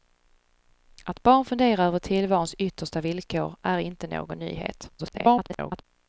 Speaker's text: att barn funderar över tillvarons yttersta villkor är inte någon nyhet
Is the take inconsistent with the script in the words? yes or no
yes